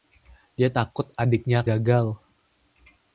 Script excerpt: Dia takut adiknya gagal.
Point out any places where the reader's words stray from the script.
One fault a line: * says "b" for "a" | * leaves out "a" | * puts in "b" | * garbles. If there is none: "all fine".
all fine